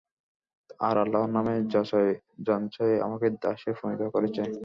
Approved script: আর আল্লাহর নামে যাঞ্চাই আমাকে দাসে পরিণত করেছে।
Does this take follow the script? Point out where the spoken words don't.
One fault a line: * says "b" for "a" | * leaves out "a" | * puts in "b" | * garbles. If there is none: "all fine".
all fine